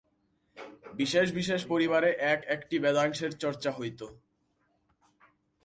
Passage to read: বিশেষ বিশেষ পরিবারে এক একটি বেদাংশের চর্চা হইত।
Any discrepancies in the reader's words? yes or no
no